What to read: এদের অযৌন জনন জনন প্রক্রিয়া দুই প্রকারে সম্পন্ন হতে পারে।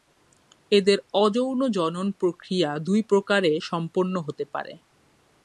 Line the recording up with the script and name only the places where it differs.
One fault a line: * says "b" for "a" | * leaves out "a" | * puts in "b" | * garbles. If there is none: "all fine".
* leaves out "জনন"